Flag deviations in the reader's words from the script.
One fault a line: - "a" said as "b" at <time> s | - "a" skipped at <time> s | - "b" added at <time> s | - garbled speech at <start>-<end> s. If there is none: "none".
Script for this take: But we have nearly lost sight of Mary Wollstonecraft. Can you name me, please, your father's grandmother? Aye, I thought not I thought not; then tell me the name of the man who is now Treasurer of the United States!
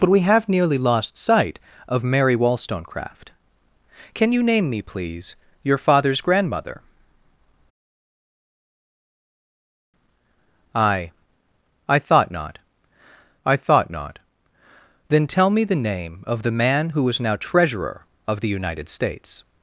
none